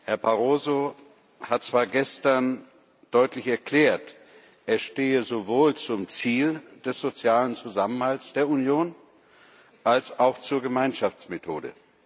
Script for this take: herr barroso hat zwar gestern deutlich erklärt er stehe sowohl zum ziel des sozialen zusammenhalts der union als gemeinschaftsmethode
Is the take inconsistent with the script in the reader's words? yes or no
yes